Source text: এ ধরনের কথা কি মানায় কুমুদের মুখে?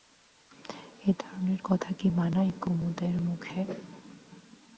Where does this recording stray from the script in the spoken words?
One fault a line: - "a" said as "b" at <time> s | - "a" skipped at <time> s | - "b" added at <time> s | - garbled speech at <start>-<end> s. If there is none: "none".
none